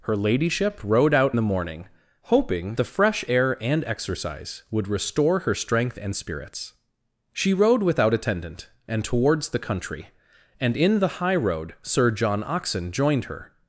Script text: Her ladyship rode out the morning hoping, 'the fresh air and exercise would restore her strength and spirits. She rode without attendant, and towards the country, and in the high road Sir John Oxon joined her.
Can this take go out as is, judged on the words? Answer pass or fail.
pass